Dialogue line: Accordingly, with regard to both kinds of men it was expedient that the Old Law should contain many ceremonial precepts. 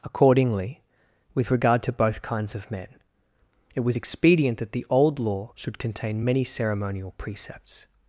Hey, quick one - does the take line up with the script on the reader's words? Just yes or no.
yes